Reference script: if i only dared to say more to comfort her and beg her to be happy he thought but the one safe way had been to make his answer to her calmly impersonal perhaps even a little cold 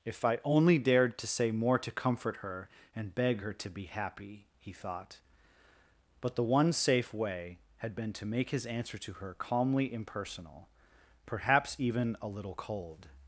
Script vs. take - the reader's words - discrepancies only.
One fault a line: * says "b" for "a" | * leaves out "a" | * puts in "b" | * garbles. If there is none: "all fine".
all fine